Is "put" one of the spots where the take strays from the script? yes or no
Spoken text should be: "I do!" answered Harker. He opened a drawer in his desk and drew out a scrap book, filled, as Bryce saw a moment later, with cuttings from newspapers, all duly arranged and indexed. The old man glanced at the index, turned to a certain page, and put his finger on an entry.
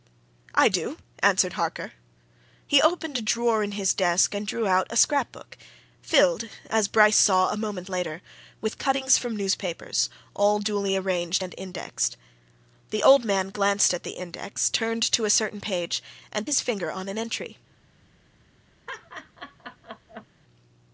yes